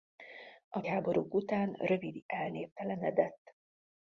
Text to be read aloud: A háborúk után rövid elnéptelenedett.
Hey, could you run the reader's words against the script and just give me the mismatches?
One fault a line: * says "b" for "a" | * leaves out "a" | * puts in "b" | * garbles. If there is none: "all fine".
all fine